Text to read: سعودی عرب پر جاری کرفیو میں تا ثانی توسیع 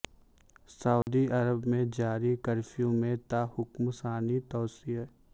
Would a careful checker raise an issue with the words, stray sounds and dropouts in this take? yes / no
yes